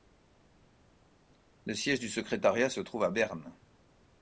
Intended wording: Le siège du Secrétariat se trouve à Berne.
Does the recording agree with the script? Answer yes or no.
yes